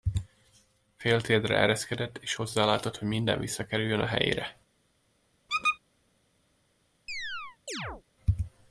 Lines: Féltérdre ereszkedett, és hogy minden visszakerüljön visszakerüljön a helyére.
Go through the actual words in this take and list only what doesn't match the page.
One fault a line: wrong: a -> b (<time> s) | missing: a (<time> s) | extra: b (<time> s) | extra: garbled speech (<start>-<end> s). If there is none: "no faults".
extra: hozzálátott (2.3 s)
missing: visszakerüljön (4.0 s)